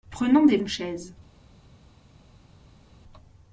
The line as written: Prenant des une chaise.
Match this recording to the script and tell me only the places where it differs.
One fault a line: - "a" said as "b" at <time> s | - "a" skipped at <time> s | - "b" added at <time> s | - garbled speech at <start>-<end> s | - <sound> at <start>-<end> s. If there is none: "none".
none